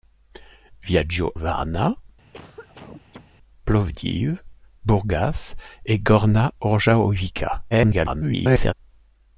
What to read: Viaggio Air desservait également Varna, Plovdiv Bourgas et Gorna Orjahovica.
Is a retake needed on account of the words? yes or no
yes